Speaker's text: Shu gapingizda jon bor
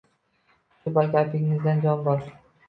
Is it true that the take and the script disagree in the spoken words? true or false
false